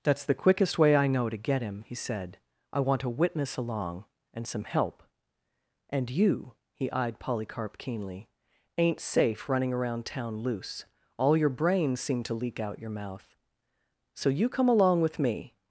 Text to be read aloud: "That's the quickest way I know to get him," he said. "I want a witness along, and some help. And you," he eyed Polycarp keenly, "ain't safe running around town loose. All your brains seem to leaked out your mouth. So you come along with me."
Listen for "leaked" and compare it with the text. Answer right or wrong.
wrong